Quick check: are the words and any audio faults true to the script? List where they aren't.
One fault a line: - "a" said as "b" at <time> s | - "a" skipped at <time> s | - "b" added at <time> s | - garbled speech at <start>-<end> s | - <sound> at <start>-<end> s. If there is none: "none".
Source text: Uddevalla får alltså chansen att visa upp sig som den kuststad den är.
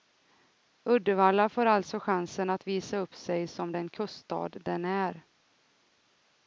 none